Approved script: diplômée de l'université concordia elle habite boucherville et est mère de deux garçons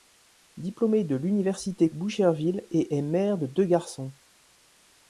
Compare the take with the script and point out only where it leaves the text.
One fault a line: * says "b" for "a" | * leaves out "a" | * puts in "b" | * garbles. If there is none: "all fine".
* leaves out "concordia elle habite"